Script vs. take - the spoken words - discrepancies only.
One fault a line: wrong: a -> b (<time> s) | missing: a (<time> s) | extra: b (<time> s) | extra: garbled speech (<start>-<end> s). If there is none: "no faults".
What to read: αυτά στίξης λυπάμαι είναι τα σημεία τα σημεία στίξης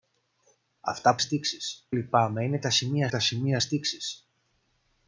no faults